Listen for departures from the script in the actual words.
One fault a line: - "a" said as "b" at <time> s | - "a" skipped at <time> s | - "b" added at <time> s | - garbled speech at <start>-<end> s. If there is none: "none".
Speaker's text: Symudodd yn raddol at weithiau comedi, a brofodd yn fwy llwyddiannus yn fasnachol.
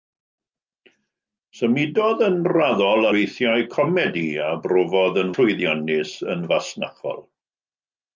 - "at" skipped at 3.1 s
- "fwy" skipped at 5.3 s